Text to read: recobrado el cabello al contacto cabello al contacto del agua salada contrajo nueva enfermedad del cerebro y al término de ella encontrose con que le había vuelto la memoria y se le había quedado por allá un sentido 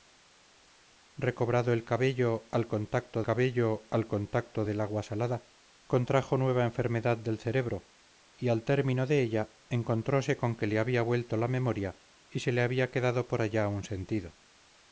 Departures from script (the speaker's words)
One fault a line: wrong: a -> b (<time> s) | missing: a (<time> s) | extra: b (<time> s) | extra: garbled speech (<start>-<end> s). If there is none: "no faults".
no faults